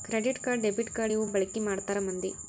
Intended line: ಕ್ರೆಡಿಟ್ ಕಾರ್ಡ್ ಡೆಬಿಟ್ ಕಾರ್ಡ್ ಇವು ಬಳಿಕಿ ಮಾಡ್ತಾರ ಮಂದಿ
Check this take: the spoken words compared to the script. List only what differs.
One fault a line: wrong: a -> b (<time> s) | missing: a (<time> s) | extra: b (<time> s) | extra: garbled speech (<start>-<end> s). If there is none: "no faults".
no faults